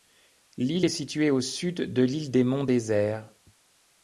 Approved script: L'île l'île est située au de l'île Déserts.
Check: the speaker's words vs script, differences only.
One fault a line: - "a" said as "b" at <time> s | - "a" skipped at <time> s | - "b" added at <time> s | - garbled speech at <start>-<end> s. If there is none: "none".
- "l'île" skipped at 0.9 s
- "sud" added at 1.4 s
- "des Monts" added at 2.3 s